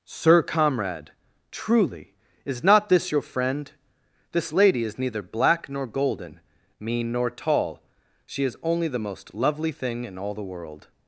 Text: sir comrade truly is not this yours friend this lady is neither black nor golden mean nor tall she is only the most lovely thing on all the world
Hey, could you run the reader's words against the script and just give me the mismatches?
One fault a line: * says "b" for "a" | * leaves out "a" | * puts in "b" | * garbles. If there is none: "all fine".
* says "your" for "yours"
* says "in" for "on"